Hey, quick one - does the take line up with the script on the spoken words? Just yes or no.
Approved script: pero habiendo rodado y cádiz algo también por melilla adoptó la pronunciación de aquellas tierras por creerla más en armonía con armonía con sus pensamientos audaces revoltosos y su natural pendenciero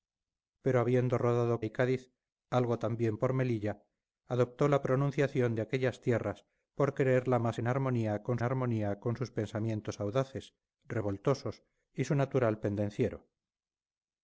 yes